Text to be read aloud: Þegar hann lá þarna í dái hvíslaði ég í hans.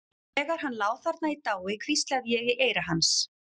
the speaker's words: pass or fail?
fail